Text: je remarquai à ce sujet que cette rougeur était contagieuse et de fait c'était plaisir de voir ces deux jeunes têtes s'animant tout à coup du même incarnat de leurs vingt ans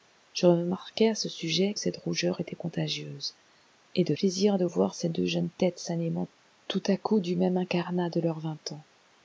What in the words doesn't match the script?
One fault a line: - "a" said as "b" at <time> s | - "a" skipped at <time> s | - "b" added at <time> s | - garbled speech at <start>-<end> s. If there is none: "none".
- "que" skipped at 1.8 s
- "fait c'était" skipped at 4.1 s